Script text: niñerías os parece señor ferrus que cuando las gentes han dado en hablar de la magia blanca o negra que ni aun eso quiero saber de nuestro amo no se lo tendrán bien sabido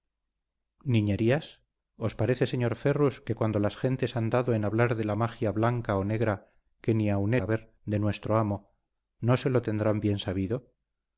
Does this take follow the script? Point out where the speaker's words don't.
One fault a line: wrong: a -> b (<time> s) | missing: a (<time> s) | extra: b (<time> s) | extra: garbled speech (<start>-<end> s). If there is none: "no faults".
missing: eso quiero (7.3 s)